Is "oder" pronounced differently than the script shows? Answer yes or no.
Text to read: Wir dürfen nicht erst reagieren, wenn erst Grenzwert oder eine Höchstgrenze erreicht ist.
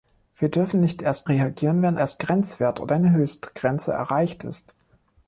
no